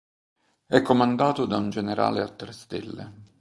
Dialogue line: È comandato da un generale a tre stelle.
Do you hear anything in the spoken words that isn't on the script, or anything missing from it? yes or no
no